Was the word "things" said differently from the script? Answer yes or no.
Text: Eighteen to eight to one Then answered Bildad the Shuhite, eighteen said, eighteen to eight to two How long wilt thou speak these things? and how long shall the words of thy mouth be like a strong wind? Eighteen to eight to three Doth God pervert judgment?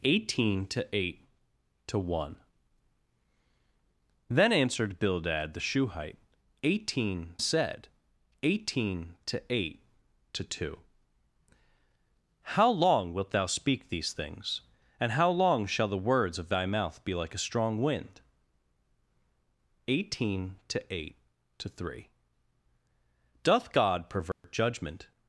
no